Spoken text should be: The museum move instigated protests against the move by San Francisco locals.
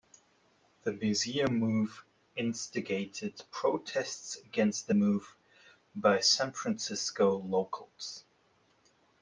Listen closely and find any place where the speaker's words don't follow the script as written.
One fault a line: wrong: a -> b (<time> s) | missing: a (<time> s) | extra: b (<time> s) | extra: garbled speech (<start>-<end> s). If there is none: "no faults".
no faults